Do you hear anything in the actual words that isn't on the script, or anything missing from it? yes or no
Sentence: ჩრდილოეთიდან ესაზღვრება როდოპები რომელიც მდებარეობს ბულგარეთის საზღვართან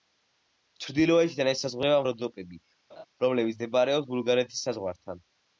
no